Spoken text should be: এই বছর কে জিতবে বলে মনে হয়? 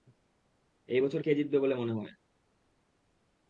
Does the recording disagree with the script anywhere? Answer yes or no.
no